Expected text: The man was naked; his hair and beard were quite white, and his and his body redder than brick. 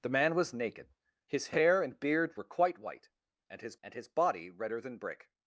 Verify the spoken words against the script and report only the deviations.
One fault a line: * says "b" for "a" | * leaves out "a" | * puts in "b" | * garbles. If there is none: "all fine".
all fine